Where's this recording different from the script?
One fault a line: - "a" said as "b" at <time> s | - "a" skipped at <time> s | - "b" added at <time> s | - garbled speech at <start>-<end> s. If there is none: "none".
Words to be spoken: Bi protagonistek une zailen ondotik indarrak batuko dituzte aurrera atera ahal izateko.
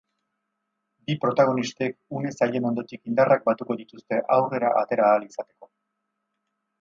none